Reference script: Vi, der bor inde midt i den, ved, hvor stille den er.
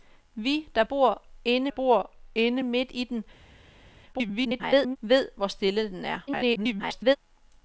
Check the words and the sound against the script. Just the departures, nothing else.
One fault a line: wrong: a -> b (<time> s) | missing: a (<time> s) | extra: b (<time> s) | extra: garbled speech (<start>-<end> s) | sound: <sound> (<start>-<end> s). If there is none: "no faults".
extra: bor inde (1.7 s)
extra: garbled speech (4.1-5.0 s)
extra: garbled speech (6.3-7.2 s)